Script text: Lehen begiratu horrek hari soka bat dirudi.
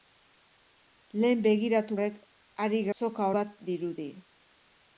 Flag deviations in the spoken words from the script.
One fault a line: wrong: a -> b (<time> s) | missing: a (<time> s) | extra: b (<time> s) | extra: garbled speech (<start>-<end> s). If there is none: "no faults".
no faults